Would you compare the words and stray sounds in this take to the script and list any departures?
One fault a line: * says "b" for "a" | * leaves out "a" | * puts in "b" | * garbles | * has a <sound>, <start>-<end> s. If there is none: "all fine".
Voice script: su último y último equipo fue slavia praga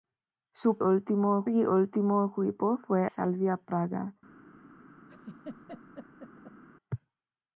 * has a laugh, 5.1-6.6 s